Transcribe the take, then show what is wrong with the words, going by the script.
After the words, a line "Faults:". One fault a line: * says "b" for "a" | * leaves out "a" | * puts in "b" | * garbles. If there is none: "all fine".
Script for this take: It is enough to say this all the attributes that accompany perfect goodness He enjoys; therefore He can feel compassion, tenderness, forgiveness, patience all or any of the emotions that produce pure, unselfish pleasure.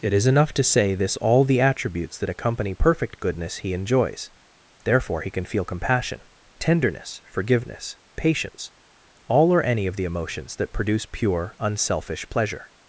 It is enough to say this all the attributes that accompany perfect goodness He enjoys; therefore He can feel compassion, tenderness, forgiveness, patience all or any of the emotions that produce pure, unselfish pleasure.
Faults:
all fine